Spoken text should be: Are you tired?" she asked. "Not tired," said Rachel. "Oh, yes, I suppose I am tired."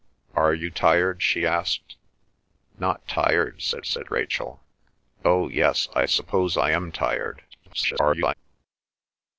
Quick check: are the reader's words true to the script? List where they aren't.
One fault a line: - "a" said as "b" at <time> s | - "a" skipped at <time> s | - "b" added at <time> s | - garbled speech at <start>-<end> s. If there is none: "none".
- "said" added at 3.8 s
- garbled speech at 7.5-8.3 s